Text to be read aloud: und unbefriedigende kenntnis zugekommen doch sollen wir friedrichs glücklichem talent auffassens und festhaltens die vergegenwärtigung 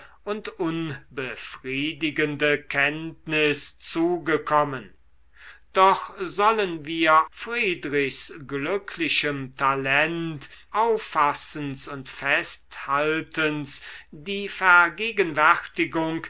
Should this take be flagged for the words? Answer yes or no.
no